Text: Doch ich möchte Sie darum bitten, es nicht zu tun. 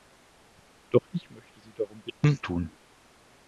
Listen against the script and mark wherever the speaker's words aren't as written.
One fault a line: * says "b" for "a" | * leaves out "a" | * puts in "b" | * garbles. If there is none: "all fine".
* leaves out "es nicht zu"